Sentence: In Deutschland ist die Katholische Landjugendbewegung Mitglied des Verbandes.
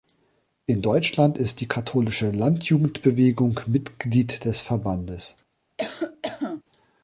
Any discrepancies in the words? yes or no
no